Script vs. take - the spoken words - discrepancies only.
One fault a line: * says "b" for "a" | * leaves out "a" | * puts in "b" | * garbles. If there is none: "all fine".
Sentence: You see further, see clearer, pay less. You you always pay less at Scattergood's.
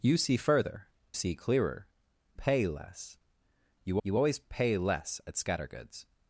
all fine